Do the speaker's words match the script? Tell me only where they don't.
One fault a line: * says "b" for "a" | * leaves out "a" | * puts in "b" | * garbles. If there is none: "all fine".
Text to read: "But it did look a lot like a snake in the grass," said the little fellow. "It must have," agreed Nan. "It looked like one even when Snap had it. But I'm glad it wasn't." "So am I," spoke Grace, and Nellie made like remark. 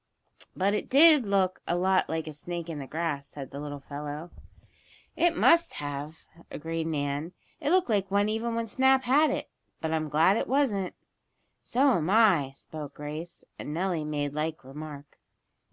all fine